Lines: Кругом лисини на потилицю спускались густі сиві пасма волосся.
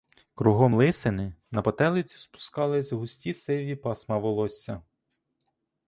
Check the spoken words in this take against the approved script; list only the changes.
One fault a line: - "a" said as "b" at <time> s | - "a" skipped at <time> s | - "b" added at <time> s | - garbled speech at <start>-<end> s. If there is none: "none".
none